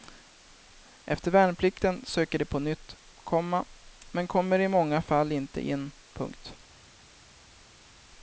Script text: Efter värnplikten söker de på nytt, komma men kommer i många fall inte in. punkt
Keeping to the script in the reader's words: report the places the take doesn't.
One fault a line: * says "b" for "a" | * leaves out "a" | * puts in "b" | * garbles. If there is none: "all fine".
all fine